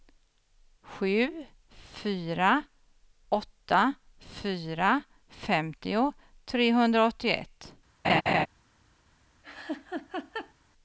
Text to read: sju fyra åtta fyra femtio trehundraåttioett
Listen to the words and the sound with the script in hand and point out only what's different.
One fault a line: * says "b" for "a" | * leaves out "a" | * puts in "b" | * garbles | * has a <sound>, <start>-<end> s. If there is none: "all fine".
* has a laugh, 8.0-8.5 s
* has a laugh, 9.4-10.5 s